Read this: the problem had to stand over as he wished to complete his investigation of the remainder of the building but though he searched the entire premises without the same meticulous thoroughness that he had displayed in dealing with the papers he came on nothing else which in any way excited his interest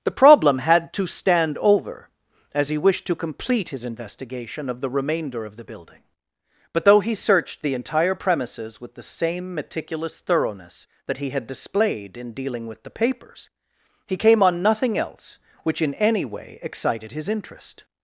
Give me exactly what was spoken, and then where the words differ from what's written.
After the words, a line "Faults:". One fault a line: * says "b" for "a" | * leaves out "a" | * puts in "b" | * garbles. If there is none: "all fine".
the problem had to stand over as he wished to complete his investigation of the remainder of the building but though he searched the entire premises with the same meticulous thoroughness that he had displayed in dealing with the papers he came on nothing else which in any way excited his interest
Faults:
* says "with" for "without"